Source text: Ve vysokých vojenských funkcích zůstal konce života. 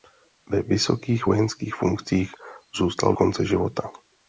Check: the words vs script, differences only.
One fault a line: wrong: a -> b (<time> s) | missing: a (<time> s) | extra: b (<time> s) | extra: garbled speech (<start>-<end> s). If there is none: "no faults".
no faults